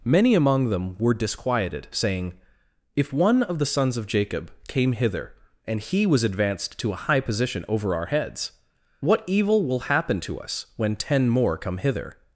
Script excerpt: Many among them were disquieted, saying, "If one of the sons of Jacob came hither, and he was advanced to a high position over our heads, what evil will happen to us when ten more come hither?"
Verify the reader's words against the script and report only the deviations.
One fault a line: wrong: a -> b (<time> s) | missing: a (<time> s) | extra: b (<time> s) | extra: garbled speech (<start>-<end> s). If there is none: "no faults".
no faults